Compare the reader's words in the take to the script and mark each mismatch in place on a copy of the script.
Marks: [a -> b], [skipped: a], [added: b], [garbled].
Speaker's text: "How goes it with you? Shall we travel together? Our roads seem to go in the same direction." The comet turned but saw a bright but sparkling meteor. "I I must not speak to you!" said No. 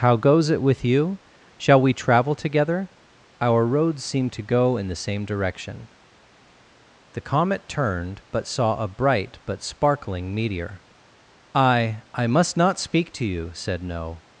"How goes it with you? Shall we travel together? Our roads seem to go in the same direction." The comet turned but saw a bright but sparkling meteor. "I I must not speak to you!" said No.